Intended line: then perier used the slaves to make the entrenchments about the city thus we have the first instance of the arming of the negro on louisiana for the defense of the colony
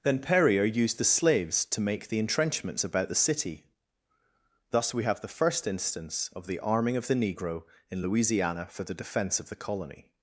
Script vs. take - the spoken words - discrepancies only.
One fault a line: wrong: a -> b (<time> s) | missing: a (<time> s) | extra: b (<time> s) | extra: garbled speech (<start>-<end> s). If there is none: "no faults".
wrong: on -> in (7.9 s)